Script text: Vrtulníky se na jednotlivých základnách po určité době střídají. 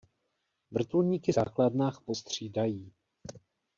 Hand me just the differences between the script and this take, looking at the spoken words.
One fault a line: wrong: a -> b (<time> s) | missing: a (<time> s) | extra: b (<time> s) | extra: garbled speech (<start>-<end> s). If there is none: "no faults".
missing: se na jednotlivých (1.3 s)
missing: určité době (2.1 s)